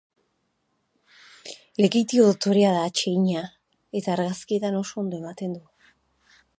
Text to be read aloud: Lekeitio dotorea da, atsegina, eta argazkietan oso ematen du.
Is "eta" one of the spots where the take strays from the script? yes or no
no